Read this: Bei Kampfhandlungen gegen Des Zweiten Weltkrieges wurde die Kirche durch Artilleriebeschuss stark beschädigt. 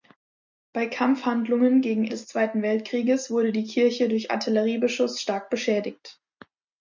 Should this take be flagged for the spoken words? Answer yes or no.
no